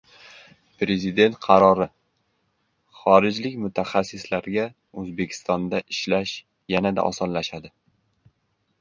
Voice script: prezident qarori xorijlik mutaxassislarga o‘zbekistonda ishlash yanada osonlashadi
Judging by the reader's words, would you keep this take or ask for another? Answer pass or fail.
pass